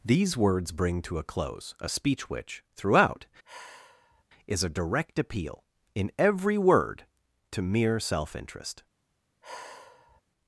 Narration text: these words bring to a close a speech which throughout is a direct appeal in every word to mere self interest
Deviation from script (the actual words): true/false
false